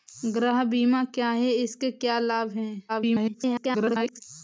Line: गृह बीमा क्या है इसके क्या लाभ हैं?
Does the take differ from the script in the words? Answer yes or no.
yes